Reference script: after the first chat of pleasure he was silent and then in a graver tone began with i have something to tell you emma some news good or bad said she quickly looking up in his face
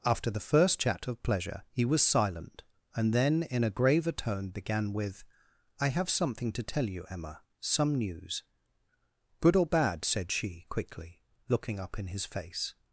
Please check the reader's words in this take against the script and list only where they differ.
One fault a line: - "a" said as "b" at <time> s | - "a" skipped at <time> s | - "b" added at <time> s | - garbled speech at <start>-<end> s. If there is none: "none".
none